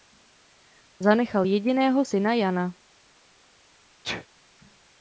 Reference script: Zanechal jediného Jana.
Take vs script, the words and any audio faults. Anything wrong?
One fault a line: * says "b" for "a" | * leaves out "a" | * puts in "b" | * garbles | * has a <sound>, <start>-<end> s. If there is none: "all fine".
* puts in "syna"
* has a sneeze, 4.0-4.3 s